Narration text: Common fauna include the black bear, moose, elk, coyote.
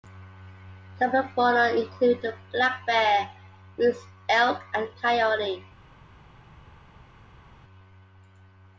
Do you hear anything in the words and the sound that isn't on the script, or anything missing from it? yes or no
yes